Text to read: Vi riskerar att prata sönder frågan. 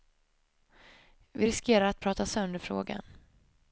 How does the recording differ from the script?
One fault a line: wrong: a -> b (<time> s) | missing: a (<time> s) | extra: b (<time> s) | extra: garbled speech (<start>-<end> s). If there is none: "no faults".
no faults